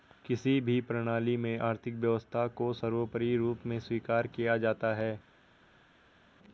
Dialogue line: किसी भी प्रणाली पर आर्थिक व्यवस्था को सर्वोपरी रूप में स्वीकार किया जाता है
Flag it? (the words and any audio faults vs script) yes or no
yes